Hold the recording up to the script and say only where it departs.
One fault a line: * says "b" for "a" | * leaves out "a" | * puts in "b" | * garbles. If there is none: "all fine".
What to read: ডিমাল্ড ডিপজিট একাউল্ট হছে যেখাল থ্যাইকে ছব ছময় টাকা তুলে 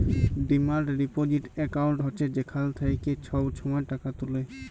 all fine